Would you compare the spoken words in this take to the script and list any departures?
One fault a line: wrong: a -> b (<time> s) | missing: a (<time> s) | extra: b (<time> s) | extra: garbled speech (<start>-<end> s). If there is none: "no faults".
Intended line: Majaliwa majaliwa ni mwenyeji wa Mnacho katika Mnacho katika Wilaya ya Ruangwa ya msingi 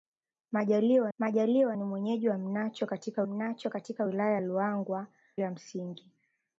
no faults